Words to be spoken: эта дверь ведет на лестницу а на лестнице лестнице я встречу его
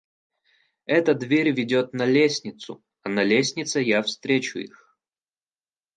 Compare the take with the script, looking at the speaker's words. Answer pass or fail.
fail